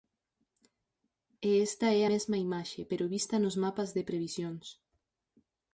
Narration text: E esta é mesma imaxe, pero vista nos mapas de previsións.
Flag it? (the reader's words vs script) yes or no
no